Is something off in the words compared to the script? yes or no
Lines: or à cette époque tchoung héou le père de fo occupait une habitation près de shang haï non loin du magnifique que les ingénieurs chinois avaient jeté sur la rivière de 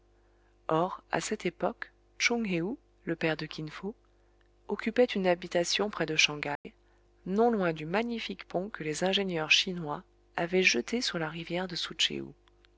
yes